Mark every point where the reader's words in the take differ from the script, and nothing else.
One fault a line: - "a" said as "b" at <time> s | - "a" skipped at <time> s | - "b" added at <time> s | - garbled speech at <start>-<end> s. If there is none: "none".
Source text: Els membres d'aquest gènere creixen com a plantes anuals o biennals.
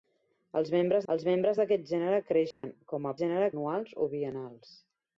- "els membres" added at 1.1 s
- "plantes" said as "gènere" at 3.2 s